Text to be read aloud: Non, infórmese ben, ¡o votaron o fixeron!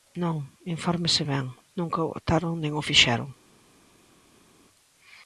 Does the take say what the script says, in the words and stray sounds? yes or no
no